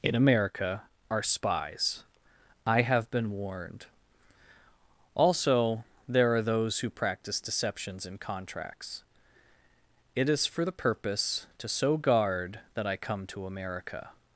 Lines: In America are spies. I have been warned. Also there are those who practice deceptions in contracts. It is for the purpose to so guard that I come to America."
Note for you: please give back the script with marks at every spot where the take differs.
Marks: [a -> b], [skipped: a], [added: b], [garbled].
In America are spies. I have been warned. Also there are those who practice deceptions in contracts. It is for the purpose to so guard that I come to America."